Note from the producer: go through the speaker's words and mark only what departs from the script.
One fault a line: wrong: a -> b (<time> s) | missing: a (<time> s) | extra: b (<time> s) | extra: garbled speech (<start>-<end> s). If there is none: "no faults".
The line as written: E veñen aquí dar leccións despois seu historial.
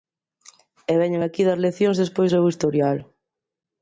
no faults